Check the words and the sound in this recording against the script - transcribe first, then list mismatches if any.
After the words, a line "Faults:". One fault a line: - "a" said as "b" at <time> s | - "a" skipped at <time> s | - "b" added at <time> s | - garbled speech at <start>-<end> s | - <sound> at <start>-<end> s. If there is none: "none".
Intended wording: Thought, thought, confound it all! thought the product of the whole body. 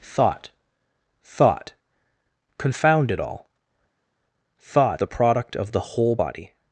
Thought, thought, confound it all! thought the product of the whole body.
Faults:
none